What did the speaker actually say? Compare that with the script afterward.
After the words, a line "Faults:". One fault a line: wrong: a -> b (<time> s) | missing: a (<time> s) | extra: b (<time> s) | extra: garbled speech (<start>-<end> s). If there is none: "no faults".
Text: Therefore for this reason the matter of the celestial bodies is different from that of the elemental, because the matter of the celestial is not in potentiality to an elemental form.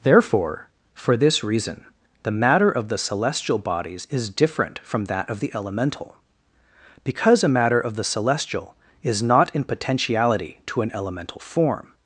Therefore for this reason the matter of the celestial bodies is different from that of the elemental, because a matter of the celestial is not in potentiality to an elemental form.
Faults:
wrong: the -> a (7.4 s)